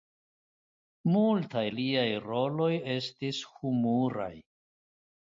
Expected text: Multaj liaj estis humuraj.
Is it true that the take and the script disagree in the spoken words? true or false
true